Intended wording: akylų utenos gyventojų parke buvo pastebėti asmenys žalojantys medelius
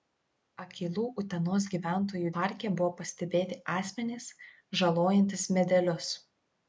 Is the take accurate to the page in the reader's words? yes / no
yes